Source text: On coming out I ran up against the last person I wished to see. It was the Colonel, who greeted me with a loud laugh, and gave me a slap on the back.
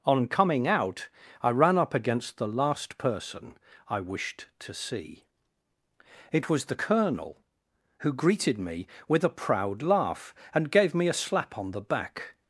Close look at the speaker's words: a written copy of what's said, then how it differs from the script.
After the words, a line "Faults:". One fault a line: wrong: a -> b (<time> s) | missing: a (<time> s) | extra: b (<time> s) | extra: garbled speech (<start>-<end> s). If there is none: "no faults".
On coming out I ran up against the last person I wished to see. It was the Colonel, who greeted me with a proud laugh, and gave me a slap on the back.
Faults:
wrong: loud -> proud (9.3 s)